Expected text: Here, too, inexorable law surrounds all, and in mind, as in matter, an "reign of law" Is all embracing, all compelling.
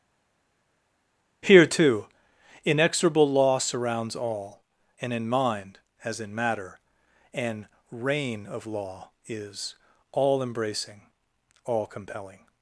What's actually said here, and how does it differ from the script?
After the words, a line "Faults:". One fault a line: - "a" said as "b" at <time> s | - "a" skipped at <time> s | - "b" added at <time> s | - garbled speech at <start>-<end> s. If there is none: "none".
Here, too, inexorable law surrounds all, and in mind, as in matter, an "reign of law" Is all embracing, all compelling.
Faults:
none